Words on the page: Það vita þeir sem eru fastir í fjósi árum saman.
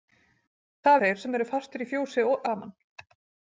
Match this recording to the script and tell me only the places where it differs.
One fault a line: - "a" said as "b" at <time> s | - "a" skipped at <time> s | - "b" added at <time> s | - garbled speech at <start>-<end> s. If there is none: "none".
- "vita" skipped at 1.0 s
- "árum" skipped at 2.3 s